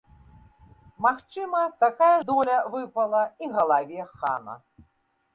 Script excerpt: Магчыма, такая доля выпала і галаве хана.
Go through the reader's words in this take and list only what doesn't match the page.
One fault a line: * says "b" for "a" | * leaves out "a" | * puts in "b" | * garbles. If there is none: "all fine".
all fine